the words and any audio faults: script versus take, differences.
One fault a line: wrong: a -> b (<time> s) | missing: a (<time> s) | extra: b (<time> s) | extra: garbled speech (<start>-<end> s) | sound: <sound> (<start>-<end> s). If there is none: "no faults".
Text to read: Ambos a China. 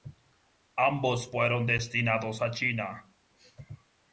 extra: fueron destinados (1.3 s)